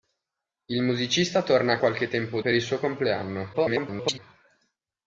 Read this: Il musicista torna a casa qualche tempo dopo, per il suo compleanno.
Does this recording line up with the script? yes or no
no